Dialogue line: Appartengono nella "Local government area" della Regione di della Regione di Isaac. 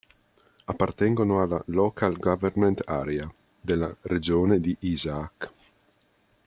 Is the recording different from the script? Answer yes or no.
yes